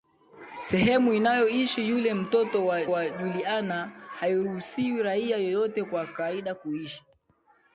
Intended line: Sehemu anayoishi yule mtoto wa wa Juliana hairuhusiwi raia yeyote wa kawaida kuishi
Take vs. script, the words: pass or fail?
pass